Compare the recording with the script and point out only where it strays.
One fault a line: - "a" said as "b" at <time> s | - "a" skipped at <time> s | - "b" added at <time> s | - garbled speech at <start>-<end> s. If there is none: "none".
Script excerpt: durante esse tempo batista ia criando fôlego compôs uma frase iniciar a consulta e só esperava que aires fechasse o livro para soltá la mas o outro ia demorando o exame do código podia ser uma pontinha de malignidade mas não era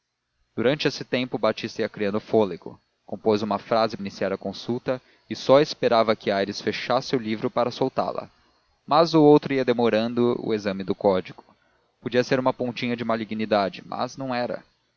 none